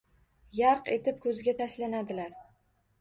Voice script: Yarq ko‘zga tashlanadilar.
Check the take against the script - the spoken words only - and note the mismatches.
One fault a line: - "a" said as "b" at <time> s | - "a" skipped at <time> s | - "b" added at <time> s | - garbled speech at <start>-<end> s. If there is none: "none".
- "etib" added at 0.9 s